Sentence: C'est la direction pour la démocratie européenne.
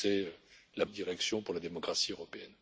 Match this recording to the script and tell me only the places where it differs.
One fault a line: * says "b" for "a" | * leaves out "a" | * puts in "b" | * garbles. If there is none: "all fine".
all fine